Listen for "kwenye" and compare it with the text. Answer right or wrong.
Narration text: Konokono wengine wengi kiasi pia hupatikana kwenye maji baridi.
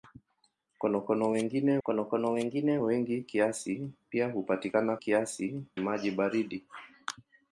wrong